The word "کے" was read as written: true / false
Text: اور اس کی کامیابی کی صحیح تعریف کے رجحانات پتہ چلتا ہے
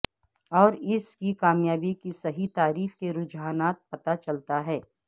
true